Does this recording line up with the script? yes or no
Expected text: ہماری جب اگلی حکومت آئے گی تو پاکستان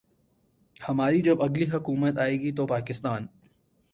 yes